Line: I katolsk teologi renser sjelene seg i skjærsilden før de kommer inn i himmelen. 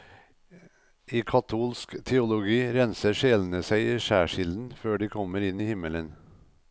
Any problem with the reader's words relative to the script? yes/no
no